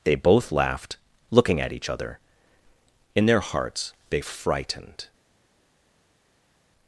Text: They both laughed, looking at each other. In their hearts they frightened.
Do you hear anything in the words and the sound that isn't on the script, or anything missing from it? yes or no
no